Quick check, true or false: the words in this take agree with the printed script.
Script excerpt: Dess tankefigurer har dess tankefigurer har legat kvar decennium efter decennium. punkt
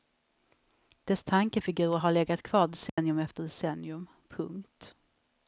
false